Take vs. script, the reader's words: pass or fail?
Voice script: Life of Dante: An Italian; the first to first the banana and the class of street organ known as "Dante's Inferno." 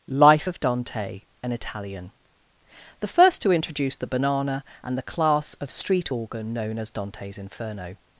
fail